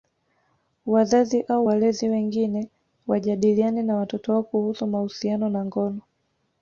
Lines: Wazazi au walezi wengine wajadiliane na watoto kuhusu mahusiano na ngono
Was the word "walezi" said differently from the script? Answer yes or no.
no